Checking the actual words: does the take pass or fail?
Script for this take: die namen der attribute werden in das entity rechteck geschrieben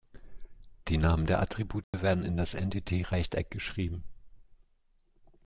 pass